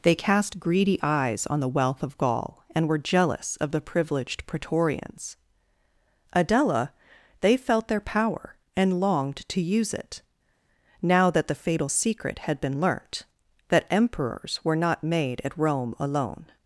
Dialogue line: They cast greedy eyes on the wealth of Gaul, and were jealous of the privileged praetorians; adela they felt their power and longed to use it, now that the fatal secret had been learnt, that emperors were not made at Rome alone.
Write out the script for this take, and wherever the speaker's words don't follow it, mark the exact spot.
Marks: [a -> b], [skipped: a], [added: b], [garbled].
They cast greedy eyes on the wealth of Gaul, and were jealous of the privileged praetorians; adela they felt their power and longed to use it, now that the fatal secret had been learnt, that emperors were not made at Rome alone.